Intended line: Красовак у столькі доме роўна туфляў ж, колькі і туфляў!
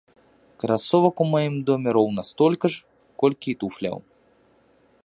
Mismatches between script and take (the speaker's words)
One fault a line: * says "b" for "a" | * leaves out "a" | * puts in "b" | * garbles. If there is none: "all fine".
* says "маім" for "столькі"
* says "столькі" for "туфляў"